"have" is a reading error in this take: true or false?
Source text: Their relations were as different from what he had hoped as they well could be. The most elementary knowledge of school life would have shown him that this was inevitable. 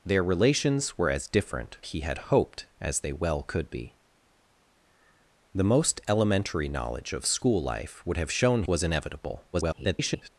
false